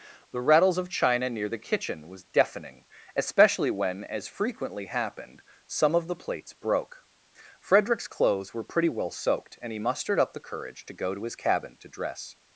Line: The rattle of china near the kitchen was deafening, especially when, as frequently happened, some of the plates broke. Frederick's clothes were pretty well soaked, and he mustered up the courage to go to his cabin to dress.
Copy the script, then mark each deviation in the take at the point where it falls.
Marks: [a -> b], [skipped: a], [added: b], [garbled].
The [rattle -> rattles] of china near the kitchen was deafening, especially when, as frequently happened, some of the plates broke. Frederick's clothes were pretty well soaked, and he mustered up the courage to go to his cabin to dress.